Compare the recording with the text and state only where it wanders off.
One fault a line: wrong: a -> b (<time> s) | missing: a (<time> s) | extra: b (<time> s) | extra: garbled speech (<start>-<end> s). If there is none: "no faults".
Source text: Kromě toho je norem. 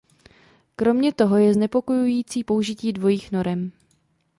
extra: znepokojující použití dvojích (1.5 s)